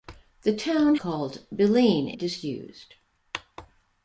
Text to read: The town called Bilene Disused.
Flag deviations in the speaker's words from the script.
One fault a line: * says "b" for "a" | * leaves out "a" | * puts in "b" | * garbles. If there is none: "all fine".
all fine